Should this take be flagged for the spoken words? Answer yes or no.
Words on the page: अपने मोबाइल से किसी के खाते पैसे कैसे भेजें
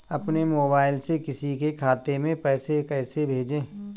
yes